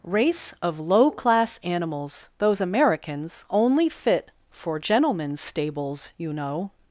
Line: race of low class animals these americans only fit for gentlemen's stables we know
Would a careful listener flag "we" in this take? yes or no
yes